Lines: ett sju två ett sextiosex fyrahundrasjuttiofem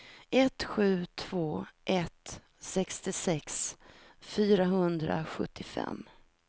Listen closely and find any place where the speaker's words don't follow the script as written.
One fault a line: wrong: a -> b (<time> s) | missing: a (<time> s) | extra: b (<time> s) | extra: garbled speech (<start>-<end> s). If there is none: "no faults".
no faults